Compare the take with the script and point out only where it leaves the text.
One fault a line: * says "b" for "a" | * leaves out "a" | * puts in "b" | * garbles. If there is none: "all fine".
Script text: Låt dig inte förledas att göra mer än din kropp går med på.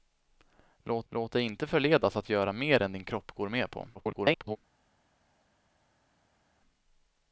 * puts in "låt"
* garbles